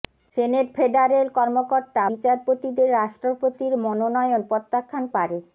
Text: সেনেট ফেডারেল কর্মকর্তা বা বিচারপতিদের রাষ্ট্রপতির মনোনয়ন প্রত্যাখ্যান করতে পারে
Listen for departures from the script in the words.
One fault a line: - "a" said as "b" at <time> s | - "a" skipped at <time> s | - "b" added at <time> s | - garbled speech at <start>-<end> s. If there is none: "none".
- "বা" skipped at 2.0 s
- "করতে" skipped at 5.0 s